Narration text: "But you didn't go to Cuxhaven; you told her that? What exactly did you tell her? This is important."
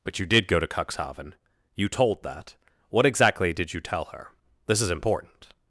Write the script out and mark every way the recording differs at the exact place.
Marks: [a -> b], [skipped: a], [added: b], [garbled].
"But you [didn't -> did] go to Cuxhaven; you told [skipped: her] that? What exactly did you tell her? This is important."